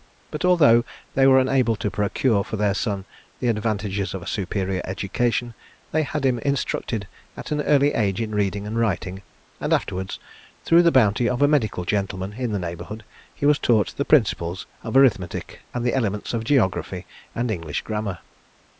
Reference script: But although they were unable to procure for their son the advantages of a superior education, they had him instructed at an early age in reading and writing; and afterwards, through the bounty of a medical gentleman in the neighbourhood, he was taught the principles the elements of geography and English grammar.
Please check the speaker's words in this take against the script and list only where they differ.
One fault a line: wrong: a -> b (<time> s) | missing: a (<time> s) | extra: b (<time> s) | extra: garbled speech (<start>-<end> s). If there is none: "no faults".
extra: of arithmetic and (14.8 s)